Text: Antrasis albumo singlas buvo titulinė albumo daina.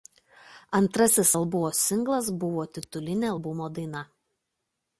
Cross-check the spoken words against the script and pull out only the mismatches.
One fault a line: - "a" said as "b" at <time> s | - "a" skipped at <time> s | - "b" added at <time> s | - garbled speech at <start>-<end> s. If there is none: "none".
none